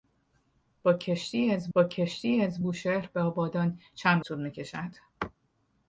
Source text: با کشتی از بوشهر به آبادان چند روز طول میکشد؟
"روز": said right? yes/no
no